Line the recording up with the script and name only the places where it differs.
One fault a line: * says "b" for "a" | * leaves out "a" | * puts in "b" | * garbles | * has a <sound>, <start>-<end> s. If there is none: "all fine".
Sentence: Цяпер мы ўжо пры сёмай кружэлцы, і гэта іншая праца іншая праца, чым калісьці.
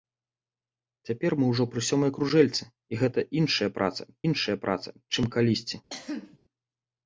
* has a cough, 5.9-6.4 s